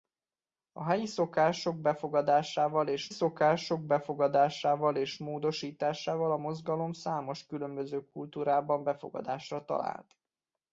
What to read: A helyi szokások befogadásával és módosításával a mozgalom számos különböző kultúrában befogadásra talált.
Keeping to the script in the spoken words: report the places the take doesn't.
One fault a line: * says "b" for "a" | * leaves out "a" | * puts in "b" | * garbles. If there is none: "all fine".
* puts in "szokások befogadásával és"